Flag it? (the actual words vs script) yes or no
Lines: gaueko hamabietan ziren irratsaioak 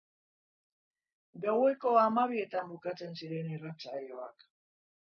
yes